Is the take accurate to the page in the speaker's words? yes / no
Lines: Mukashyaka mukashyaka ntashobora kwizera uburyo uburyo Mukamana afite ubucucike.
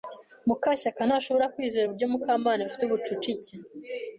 no